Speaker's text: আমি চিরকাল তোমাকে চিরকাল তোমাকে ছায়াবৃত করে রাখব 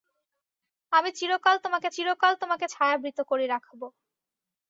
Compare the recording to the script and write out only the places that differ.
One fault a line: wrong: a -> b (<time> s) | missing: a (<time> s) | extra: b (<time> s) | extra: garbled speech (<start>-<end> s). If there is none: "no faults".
no faults